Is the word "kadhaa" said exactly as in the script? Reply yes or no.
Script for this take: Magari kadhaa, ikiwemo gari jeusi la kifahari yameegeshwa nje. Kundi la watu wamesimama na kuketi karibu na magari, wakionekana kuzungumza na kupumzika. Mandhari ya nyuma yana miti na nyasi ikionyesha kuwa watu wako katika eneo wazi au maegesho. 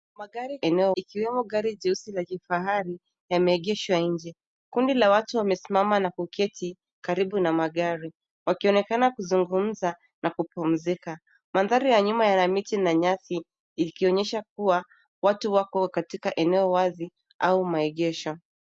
no